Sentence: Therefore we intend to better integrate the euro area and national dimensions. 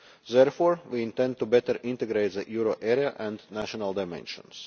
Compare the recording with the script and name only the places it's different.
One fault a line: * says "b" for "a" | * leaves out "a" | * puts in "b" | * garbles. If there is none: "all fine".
all fine